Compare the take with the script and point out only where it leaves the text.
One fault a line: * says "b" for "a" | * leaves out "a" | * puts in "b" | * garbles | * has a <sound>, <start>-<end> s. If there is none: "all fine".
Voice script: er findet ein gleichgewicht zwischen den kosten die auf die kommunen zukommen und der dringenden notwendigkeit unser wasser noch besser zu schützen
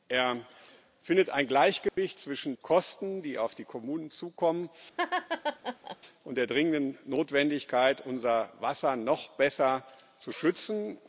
* has a dropout, 1.9-2.0 s
* leaves out "den"
* has a laugh, 5.0-6.0 s